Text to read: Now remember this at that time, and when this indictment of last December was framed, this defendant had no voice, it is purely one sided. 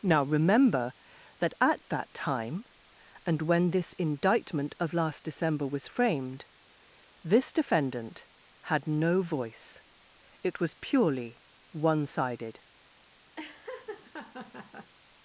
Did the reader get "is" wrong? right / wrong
wrong